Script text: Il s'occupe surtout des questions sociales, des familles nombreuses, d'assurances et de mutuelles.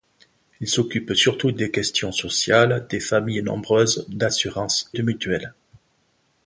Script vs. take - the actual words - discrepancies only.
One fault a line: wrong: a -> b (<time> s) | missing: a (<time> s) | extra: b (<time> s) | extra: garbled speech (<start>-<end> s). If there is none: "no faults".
missing: et (5.0 s)